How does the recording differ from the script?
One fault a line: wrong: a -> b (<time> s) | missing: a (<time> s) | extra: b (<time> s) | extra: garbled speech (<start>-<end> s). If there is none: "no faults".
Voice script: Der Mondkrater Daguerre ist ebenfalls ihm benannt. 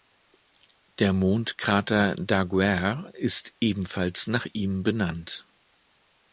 extra: nach (4.2 s)